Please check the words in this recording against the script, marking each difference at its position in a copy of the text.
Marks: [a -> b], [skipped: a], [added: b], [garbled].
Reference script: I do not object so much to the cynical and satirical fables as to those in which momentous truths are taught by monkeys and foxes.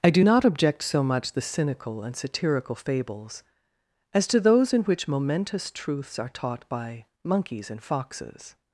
I do not object so much [skipped: to] the cynical and satirical fables as to those in which momentous truths are taught by monkeys and foxes.